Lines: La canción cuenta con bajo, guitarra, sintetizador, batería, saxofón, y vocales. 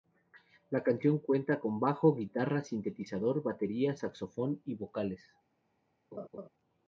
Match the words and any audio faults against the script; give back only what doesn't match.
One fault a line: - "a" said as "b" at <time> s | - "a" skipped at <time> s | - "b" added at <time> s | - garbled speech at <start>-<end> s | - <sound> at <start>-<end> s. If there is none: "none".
- laugh at 6.1-6.5 s